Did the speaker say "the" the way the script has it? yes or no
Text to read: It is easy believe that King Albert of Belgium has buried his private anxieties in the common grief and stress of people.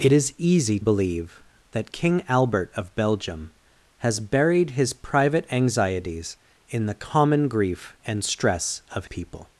yes